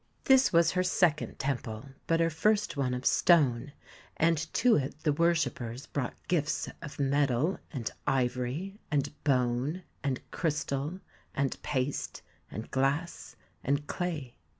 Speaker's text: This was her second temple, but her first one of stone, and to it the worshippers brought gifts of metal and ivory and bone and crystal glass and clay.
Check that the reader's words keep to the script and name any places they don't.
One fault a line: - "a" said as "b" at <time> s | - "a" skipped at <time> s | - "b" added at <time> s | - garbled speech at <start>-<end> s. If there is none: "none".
- "and paste and" added at 11.3 s